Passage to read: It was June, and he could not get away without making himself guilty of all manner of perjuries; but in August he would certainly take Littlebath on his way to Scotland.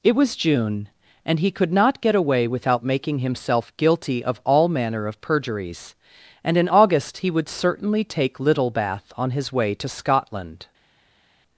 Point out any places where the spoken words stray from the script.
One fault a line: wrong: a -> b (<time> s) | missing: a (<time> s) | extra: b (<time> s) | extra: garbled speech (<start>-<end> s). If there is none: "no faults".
wrong: but -> and (6.4 s)